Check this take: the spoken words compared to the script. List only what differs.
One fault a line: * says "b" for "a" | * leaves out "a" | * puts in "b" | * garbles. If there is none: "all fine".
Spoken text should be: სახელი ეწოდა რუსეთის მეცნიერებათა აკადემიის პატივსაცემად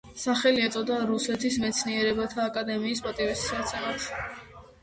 all fine